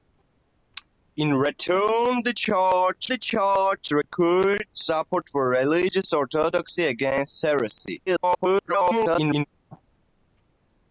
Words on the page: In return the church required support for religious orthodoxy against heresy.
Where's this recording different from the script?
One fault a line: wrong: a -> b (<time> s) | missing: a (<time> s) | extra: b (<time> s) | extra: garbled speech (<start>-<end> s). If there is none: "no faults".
extra: the church (3.1 s)
extra: garbled speech (8.1-9.4 s)